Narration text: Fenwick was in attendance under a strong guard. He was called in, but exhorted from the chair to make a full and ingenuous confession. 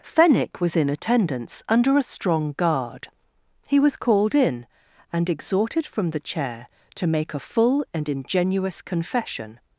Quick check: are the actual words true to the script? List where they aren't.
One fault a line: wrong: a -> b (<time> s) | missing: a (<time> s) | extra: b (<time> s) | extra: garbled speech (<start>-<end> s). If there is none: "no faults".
wrong: but -> and (5.1 s)